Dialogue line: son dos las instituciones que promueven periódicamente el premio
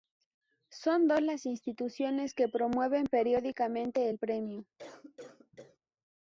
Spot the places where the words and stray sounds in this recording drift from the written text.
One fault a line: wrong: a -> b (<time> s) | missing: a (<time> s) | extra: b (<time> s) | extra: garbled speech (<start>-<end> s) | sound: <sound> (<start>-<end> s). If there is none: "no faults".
sound: cough (4.8-5.8 s)